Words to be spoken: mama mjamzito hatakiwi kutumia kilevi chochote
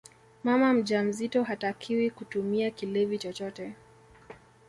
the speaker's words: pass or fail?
pass